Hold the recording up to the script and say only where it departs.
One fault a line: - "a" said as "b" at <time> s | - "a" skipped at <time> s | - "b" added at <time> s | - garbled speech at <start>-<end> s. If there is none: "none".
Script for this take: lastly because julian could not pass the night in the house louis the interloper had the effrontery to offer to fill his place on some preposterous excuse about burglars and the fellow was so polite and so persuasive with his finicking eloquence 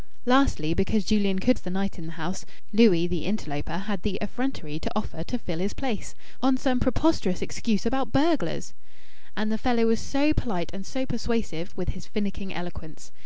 - "not pass" skipped at 1.6 s